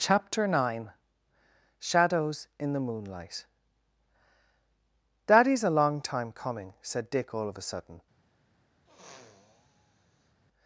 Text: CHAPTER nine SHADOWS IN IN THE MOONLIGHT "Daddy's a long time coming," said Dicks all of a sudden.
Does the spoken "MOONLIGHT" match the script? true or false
true